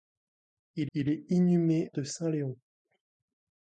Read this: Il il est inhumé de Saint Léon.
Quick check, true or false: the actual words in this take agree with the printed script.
true